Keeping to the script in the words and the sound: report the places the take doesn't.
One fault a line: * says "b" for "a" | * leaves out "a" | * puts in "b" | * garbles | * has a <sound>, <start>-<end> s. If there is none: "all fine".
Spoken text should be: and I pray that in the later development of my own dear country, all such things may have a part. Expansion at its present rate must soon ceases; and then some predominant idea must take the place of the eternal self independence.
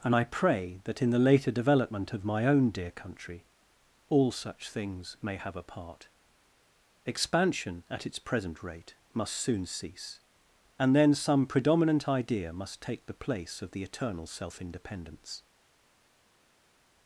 * says "cease" for "ceases"